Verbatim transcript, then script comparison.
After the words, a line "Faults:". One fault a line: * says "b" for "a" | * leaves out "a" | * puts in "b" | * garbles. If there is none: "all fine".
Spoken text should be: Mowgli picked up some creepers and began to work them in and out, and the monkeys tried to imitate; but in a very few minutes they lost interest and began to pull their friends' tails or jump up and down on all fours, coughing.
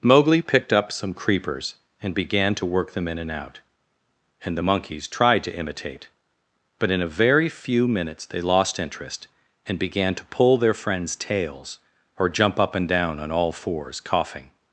Mowgli picked up some creepers and began to work them in and out, and the monkeys tried to imitate; but in a very few minutes they lost interest and began to pull their friends' tails or jump up and down on all fours, coughing.
Faults:
all fine